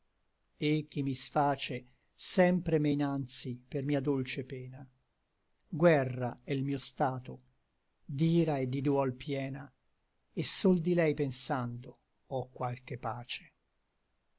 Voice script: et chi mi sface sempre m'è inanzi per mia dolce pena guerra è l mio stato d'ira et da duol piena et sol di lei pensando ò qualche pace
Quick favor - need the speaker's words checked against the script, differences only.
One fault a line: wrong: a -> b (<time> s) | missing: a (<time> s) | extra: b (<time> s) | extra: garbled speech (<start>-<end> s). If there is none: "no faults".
wrong: da -> di (8.7 s)